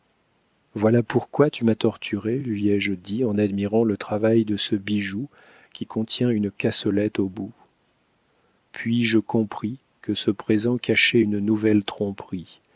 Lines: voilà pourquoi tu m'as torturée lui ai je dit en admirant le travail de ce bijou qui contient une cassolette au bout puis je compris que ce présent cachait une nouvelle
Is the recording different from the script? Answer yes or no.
no